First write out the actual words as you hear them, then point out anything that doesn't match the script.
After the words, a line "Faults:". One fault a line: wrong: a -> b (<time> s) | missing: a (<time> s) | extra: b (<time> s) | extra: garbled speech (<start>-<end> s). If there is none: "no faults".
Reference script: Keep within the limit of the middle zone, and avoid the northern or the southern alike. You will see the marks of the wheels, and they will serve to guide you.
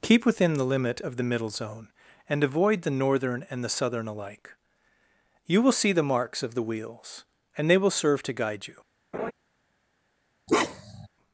Keep within the limit of the middle zone, and avoid the northern and the southern alike. You will see the marks of the wheels, and they will serve to guide you.
Faults:
wrong: or -> and (3.5 s)